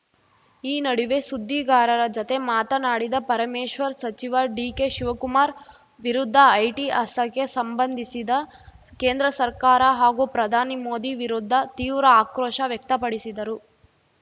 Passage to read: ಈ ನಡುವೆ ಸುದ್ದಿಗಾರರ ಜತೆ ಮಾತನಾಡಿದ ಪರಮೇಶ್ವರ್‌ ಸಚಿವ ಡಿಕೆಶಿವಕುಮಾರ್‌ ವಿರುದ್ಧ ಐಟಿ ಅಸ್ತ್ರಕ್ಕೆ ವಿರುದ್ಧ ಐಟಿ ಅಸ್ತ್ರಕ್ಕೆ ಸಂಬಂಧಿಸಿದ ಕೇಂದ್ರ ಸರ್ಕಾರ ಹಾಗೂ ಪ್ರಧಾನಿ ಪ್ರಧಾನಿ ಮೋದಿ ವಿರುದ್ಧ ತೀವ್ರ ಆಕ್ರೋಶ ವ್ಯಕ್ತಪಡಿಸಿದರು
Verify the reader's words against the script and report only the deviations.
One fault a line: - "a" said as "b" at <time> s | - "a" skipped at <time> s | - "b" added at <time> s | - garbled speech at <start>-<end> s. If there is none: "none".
- "ವಿರುದ್ಧ ಐಟಿ ಅಸ್ತ್ರಕ್ಕೆ" skipped at 7.5 s
- "ಪ್ರಧಾನಿ" skipped at 10.8 s